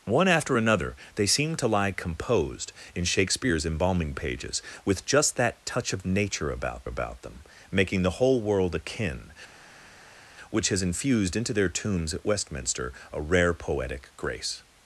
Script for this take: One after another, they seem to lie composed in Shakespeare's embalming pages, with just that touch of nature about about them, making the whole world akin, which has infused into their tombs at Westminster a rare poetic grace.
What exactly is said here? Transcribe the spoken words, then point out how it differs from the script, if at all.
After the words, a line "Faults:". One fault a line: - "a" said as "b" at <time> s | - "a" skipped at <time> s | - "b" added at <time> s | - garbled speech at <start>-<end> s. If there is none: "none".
One after another, they seem to lie composed in Shakespeare's embalming pages, with just that touch of nature about about them, making the whole world akin, which has infused into their tombs at Westminster a rare poetic grace.
Faults:
none